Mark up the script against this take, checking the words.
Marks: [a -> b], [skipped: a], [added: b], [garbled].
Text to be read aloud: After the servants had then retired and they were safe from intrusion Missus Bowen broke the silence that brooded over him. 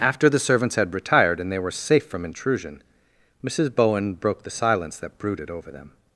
After the servants had [skipped: then] retired and they were safe from intrusion Missus Bowen broke the silence that brooded over [him. -> them]